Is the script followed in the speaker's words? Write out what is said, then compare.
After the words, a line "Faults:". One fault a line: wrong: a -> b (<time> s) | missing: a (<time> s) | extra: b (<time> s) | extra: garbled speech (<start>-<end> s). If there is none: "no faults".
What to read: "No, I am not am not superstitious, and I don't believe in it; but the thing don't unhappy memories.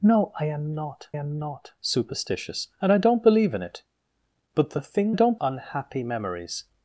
"No, I am not am not superstitious, and I don't believe in it; but the thing don't unhappy memories.
Faults:
no faults